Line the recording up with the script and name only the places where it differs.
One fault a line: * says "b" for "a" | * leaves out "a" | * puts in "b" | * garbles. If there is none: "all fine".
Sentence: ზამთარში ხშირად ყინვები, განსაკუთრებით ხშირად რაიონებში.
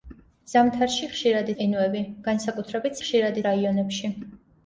all fine